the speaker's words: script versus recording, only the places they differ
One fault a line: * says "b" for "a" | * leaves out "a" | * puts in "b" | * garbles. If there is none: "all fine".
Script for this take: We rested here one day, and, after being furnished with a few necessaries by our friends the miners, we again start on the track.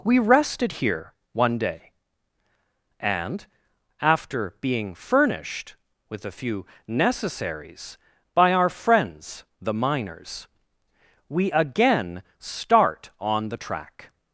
all fine